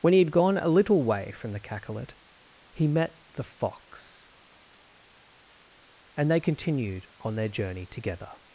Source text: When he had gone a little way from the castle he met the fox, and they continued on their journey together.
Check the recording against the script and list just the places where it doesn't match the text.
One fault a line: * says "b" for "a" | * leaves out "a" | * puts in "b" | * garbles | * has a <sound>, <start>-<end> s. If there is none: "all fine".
* says "cacolet" for "castle"